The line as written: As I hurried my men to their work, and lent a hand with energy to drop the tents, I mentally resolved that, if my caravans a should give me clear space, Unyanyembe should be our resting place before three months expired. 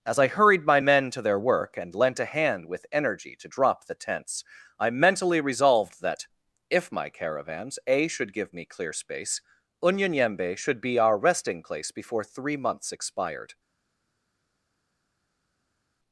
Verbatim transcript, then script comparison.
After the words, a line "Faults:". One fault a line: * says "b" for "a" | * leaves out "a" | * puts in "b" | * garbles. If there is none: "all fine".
As I hurried my men to their work, and lent a hand with energy to drop the tents, I mentally resolved that, if my caravans a should give me clear space, Unyanyembe should be our resting place before three months expired.
Faults:
all fine